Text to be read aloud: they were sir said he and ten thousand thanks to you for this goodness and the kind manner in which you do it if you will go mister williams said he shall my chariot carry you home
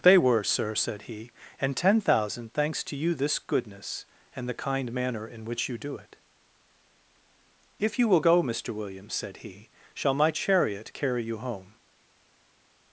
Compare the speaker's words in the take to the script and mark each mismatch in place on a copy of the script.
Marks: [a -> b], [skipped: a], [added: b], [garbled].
they were sir said he and ten thousand thanks to you [skipped: for] this goodness and the kind manner in which you do it if you will go mister williams said he shall my chariot carry you home